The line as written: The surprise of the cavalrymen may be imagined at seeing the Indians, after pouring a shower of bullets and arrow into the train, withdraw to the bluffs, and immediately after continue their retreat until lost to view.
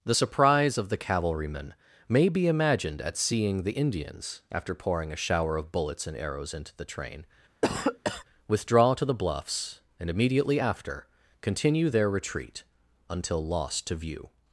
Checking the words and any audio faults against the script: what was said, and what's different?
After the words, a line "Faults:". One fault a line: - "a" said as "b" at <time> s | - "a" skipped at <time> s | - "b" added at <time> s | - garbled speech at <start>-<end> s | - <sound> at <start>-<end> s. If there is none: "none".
The surprise of the cavalrymen may be imagined at seeing the Indians, after pouring a shower of bullets and arrows into the train, withdraw to the bluffs, and immediately after continue their retreat until lost to view.
Faults:
- "arrow" said as "arrows" at 6.2 s
- cough at 7.6-8.2 s